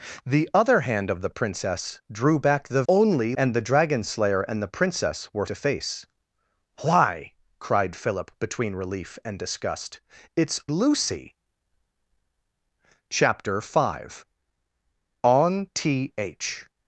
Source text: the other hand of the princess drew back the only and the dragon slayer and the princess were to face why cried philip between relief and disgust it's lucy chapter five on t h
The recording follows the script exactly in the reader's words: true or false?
true